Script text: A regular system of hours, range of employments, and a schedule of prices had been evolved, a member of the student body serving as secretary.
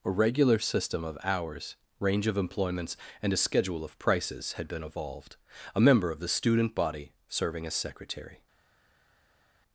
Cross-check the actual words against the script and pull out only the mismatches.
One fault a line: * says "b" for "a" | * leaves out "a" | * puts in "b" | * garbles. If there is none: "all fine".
all fine